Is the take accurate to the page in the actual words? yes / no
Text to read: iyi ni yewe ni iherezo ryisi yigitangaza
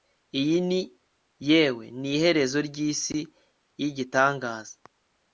yes